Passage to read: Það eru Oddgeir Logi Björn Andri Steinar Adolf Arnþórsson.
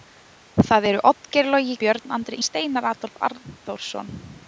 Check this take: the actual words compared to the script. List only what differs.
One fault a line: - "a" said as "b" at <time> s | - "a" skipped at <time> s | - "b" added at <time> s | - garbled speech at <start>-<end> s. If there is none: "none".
none